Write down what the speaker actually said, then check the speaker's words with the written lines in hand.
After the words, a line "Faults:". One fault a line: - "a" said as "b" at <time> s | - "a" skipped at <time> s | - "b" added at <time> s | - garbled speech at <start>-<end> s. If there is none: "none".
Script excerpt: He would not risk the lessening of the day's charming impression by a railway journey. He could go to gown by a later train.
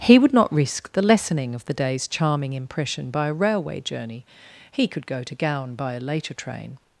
He would not risk the lessening of the day's charming impression by a railway journey. He could go to gown by a later train.
Faults:
none